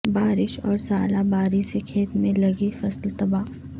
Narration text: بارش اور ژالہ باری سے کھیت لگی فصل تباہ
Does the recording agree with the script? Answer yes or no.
no